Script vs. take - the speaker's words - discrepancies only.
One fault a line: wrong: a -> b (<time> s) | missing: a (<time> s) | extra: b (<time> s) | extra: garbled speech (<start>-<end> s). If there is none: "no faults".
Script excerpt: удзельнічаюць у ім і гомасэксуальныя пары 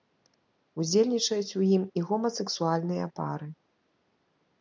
no faults